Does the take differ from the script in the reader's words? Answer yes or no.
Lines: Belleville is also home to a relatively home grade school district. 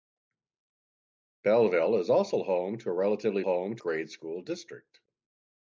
no